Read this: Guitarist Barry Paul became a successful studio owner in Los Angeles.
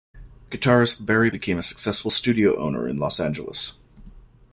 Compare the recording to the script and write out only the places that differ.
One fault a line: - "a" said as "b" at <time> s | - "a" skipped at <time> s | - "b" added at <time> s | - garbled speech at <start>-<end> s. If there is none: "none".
- "Paul" skipped at 1.3 s